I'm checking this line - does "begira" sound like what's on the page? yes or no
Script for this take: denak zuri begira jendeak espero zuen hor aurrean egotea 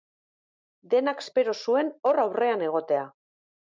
no